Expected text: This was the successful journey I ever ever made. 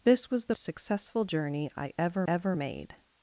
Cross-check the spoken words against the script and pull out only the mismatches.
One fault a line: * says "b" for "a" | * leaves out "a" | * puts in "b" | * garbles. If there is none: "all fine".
all fine